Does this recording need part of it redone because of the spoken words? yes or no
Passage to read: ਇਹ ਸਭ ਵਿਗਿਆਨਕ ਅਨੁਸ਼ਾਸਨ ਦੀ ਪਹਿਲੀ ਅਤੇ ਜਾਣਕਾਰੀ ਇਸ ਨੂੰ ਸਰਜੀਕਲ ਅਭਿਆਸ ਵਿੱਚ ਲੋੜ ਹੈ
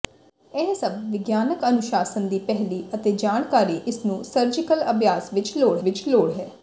yes